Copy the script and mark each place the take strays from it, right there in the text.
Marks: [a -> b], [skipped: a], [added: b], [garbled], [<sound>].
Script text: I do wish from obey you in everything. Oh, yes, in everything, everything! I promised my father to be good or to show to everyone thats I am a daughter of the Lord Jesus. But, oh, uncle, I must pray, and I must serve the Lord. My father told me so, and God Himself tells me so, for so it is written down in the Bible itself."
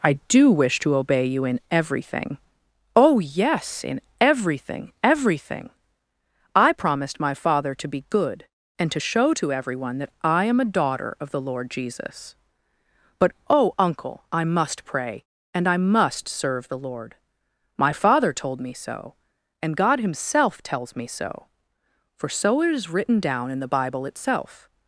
I do wish [from -> to] obey you in everything. Oh, yes, in everything, everything! I promised my father to be good [or -> and] to show to everyone [thats -> that] I am a daughter of the Lord Jesus. But, oh, uncle, I must pray, and I must serve the Lord. My father told me so, and God Himself tells me so, for so it is written down in the Bible itself."